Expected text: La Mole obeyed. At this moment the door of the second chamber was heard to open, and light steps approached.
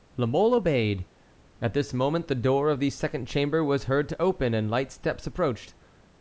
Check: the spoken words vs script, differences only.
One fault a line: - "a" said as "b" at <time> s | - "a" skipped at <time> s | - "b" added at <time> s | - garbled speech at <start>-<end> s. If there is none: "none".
none